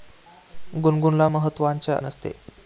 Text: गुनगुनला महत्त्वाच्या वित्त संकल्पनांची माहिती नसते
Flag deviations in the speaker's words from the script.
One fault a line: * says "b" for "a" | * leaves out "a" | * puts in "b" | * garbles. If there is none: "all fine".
* leaves out "वित्त संकल्पनांची माहिती"